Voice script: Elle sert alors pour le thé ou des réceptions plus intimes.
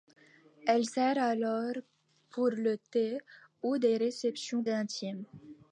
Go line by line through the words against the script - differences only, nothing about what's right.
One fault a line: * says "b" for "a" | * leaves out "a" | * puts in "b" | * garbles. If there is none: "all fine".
* leaves out "plus"